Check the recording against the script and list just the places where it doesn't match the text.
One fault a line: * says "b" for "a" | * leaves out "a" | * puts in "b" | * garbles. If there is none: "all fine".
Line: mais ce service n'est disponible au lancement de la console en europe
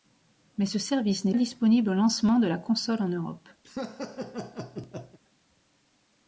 all fine